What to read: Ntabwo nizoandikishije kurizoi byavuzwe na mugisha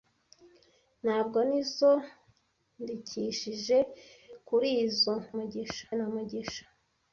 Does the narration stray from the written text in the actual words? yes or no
yes